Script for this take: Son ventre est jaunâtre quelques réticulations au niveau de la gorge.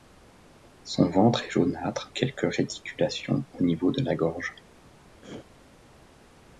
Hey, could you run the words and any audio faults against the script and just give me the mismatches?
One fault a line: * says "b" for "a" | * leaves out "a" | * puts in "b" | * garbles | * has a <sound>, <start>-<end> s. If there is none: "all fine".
* has a throat clearing, 5.2-5.5 s